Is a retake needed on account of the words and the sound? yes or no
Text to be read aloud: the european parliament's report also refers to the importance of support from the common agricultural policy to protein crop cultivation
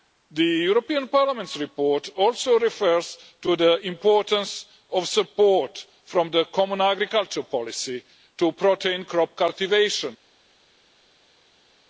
no